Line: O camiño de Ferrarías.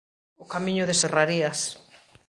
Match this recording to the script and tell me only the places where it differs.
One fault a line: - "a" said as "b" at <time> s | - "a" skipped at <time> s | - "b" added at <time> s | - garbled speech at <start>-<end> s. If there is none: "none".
none